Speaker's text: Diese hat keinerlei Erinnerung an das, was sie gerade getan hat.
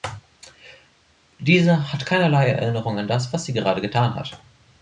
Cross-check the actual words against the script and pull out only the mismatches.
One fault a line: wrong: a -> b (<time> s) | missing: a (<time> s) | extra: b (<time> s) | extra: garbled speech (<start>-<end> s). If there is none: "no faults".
no faults